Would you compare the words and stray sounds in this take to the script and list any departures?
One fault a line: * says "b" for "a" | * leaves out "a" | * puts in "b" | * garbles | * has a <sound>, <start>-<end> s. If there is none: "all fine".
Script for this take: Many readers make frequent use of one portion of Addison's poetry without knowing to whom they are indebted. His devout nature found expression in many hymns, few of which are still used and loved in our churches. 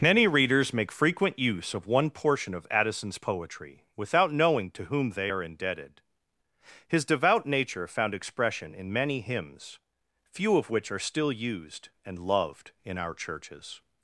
all fine